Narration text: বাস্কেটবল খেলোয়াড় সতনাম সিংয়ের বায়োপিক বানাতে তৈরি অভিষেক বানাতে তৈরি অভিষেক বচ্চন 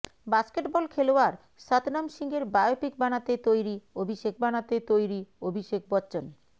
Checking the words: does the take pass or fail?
pass